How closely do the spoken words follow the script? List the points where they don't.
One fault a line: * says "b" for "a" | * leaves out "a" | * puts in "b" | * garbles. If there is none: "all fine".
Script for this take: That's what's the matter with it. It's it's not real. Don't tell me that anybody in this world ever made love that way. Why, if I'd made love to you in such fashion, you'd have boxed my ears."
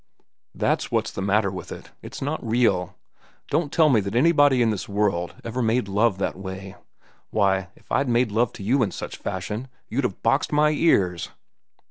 * leaves out "it's"